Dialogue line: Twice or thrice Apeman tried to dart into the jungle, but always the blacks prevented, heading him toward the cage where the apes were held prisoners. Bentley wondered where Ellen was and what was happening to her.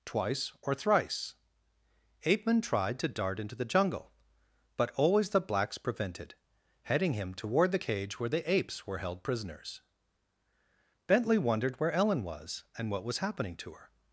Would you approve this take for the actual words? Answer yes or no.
yes